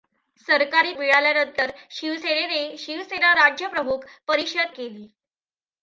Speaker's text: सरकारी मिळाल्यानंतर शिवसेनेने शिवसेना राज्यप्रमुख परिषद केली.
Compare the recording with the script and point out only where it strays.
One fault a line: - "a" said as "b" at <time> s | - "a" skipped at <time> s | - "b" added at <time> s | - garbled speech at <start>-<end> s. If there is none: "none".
none